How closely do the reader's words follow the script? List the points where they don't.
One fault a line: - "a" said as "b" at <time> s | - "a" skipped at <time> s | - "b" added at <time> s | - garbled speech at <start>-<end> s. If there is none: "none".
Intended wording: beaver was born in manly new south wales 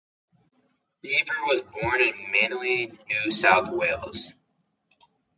none